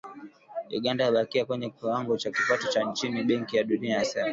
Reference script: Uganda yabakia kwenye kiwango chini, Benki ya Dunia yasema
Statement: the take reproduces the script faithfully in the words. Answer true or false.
false